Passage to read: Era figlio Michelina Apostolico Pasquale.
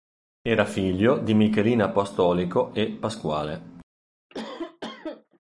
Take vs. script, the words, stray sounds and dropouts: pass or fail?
fail